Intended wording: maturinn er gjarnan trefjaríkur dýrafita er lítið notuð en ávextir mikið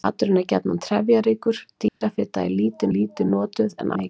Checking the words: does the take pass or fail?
fail